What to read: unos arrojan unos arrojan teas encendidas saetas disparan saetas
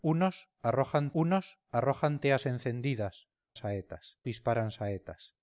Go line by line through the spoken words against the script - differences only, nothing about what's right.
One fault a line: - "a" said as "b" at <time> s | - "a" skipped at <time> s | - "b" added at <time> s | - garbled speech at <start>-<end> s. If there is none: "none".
none